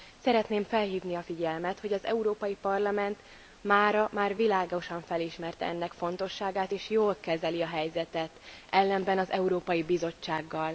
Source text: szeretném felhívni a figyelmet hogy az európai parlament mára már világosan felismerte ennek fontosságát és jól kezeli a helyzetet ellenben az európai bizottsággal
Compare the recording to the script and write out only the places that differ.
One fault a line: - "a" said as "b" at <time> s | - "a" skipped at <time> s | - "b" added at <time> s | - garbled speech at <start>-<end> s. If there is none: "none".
none